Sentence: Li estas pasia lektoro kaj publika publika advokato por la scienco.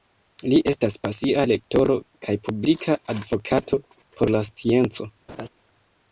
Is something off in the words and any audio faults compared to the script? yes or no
yes